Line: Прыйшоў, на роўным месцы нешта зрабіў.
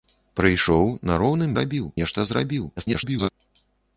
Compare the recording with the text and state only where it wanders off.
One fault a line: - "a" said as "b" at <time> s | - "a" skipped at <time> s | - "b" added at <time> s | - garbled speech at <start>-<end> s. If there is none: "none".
- "месцы" said as "зрабіў" at 1.5 s
- garbled speech at 2.8-3.3 s